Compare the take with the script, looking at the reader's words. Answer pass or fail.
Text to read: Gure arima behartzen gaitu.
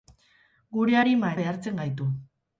pass